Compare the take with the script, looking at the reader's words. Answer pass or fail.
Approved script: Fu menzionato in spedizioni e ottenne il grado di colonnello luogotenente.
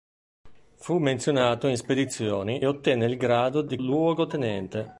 fail